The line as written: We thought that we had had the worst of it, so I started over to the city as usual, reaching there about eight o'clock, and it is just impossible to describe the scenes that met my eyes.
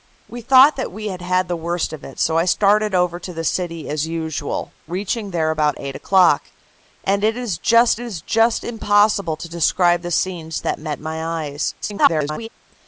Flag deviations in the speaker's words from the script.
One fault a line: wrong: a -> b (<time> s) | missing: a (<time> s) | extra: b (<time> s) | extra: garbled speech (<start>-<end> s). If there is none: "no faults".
extra: is just (8.0 s)
extra: garbled speech (11.8-12.5 s)